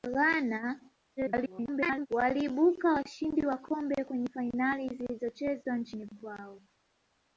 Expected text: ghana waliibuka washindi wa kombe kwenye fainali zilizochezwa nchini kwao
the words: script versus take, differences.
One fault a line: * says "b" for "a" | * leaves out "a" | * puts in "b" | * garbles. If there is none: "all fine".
* garbles